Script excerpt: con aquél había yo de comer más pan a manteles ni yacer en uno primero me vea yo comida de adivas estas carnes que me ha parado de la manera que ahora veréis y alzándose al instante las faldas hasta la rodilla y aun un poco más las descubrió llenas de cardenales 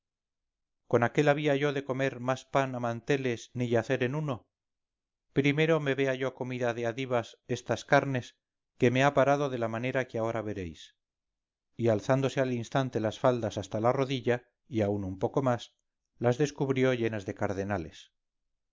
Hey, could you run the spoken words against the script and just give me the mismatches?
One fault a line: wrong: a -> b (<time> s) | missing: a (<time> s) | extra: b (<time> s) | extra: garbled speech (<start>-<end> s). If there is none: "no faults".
no faults